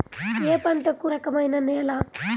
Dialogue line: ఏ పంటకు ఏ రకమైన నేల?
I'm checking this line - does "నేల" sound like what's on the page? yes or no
yes